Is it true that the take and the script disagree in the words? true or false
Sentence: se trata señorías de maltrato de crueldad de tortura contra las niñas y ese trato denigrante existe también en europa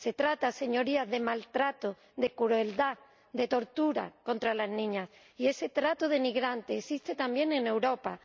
false